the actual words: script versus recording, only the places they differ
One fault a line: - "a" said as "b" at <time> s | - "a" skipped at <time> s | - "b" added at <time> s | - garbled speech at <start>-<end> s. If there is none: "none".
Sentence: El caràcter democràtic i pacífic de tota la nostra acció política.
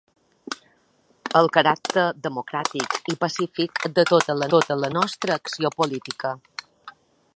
- "tota la" added at 4.5 s